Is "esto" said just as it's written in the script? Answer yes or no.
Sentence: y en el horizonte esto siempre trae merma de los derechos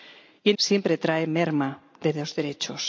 no